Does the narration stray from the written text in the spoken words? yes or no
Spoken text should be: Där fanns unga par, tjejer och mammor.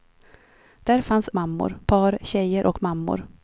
yes